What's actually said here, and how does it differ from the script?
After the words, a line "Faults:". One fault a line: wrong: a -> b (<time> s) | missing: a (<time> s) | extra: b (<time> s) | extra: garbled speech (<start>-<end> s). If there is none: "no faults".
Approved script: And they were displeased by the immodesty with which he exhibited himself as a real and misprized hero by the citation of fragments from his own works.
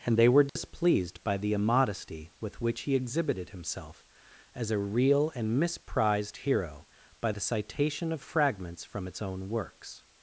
And they were displeased by the immodesty with which he exhibited himself as a real and misprized hero by the citation of fragments from its own works.
Faults:
wrong: his -> its (9.1 s)